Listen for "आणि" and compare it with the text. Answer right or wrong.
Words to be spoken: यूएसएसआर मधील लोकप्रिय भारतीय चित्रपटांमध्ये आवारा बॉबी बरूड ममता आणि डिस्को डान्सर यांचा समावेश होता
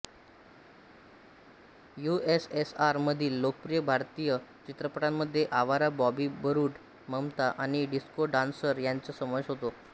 right